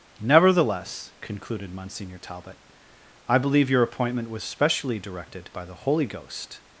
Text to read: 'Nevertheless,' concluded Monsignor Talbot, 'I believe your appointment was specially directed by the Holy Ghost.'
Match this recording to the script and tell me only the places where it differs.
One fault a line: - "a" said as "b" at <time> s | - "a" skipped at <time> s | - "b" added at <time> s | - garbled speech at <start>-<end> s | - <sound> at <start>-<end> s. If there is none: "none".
none